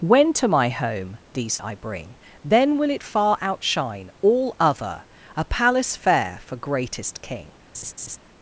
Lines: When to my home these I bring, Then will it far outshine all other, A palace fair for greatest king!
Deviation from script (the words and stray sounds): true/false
true